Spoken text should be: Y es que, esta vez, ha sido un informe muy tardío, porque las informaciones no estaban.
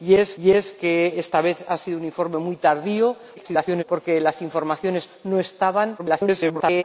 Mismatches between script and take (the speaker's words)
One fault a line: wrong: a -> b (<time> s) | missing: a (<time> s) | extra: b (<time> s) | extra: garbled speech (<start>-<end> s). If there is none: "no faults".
extra: y es (0.4 s)
extra: garbled speech (3.4-3.8 s)
extra: garbled speech (6.0-6.8 s)